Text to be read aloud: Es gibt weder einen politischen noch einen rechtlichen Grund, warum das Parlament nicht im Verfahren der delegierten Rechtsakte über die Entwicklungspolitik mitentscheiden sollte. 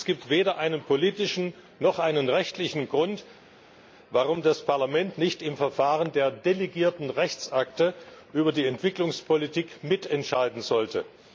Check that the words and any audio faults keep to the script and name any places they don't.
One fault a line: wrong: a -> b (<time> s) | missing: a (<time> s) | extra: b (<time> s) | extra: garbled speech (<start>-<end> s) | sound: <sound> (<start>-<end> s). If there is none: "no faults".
no faults